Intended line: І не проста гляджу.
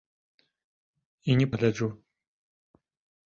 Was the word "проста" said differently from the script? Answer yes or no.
yes